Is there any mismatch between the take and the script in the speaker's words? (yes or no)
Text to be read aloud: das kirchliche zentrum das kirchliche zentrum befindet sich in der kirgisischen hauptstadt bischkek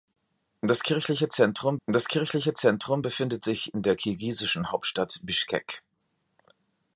no